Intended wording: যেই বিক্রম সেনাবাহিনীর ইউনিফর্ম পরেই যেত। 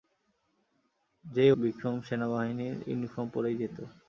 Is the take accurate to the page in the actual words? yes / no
yes